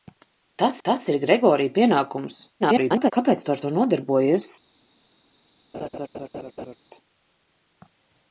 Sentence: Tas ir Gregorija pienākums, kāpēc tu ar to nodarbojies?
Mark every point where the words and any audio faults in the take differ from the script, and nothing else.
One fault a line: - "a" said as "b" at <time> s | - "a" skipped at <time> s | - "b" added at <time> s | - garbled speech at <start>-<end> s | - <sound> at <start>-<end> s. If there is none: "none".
- "tas" added at 0.9 s
- garbled speech at 2.6-3.1 s
- laugh at 5.7-6.8 s